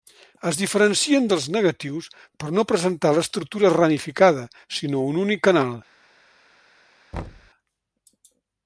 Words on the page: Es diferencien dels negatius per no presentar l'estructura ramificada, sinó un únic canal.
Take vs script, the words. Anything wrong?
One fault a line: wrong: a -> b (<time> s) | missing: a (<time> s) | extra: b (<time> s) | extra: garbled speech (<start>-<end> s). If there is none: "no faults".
no faults